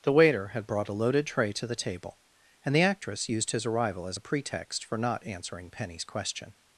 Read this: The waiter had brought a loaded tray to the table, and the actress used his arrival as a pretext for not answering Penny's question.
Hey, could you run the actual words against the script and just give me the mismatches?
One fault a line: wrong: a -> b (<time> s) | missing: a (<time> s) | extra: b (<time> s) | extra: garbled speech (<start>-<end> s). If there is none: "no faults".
no faults